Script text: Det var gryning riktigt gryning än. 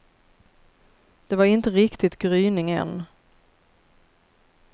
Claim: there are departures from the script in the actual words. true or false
true